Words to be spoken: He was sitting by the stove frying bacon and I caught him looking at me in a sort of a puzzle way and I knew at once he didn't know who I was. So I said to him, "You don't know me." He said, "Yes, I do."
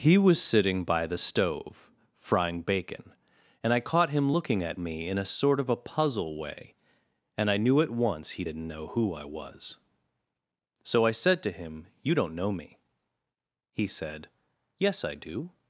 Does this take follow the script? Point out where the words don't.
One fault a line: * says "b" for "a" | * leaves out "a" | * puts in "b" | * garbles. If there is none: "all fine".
all fine